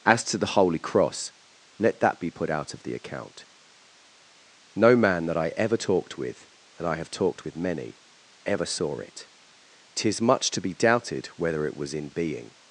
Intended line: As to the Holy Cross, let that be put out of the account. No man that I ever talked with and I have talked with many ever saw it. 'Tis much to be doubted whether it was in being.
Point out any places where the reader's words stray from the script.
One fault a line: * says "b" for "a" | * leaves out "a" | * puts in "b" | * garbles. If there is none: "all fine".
all fine